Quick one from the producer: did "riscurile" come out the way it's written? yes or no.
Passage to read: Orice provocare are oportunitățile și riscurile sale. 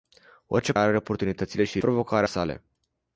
no